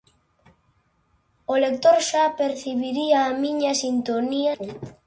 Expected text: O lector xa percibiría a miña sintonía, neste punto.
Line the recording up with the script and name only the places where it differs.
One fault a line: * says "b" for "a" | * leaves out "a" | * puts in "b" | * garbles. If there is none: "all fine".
* leaves out "neste"